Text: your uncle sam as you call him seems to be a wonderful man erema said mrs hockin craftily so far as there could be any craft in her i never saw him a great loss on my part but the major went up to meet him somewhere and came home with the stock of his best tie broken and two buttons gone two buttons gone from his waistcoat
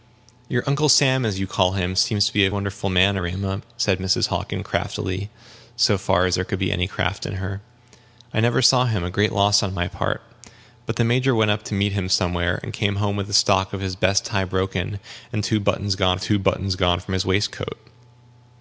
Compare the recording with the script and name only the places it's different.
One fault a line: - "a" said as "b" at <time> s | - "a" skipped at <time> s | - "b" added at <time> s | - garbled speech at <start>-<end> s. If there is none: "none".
none